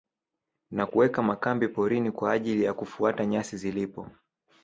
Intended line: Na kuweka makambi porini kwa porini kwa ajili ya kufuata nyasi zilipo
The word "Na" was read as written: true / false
true